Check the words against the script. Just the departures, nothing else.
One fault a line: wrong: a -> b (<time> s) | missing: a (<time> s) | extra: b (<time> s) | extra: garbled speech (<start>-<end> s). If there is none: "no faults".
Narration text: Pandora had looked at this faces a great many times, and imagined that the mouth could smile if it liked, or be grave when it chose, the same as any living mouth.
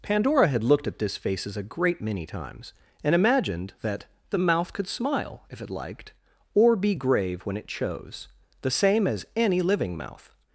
no faults